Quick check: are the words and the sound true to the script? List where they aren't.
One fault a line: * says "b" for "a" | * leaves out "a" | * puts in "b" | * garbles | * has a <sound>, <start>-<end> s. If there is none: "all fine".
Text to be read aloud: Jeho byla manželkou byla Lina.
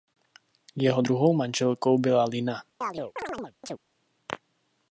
* says "druhou" for "byla"
* has a chirp, 2.8-3.8 s